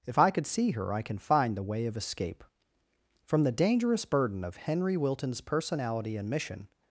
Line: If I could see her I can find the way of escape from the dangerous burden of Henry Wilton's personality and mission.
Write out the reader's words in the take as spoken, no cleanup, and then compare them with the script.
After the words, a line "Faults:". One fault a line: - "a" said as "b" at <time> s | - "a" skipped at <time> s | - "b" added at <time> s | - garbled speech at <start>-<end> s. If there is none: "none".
If I could see her I can find the way of escape from the dangerous burden of Henry Wilton's personality and mission.
Faults:
none